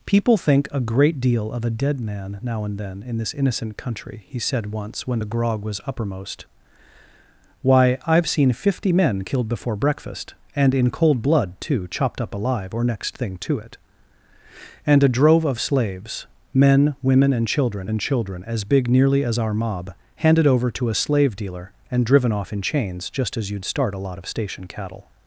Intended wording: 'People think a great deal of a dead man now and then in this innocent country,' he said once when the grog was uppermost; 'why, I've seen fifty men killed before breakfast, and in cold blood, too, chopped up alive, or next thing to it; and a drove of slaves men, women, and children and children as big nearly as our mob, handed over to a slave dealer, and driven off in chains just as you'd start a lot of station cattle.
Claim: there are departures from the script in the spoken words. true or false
false